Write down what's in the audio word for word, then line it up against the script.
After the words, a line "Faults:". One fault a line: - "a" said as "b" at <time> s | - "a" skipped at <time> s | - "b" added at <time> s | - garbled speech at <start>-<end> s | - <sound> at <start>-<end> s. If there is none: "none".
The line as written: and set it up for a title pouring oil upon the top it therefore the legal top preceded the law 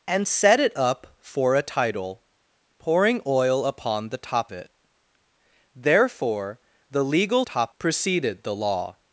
and set it up for a title pouring oil upon the top it therefore the legal top preceded the law
Faults:
none